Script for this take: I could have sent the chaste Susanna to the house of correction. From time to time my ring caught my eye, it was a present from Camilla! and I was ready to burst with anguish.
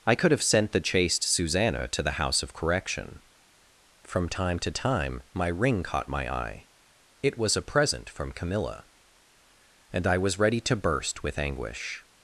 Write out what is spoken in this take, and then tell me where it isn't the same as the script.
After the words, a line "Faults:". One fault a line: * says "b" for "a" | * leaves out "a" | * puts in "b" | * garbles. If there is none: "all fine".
I could have sent the chaste Susanna to the house of correction. From time to time my ring caught my eye, it was a present from Camilla! and I was ready to burst with anguish.
Faults:
all fine